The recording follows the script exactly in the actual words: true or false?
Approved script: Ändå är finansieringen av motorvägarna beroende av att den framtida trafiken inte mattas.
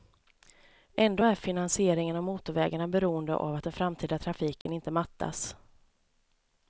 true